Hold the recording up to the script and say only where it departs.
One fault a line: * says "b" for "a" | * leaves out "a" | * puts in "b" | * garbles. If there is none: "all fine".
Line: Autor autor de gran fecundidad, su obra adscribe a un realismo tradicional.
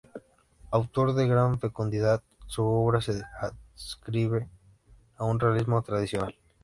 * leaves out "autor"
* puts in "se"